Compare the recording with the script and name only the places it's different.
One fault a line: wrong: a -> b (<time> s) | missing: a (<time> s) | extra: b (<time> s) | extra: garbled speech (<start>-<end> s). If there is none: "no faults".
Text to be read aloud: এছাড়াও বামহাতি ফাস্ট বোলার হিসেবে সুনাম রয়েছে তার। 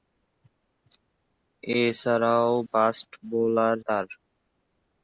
missing: বামহাতি (2.5 s)
missing: হিসেবে সুনাম রয়েছে (3.8 s)